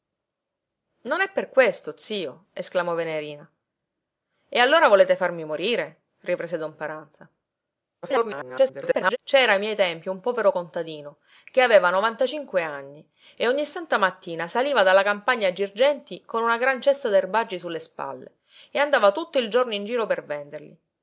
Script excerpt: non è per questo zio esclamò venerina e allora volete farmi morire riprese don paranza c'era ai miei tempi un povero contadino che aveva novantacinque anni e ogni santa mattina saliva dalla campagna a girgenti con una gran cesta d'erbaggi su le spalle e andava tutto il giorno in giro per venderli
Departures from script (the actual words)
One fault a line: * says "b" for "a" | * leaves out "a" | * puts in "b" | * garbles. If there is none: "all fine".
* garbles